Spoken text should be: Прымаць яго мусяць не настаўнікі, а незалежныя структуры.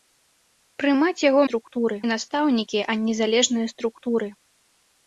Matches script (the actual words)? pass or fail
fail